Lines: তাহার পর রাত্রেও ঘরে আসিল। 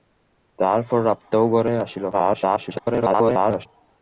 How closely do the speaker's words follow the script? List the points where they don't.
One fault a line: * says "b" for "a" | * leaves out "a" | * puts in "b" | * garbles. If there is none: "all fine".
* garbles